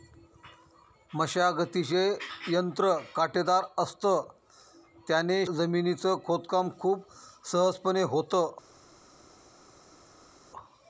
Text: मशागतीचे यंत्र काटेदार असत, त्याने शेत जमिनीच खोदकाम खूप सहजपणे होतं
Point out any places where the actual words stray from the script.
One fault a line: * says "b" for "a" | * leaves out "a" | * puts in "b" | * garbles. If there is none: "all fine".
* leaves out "शेत"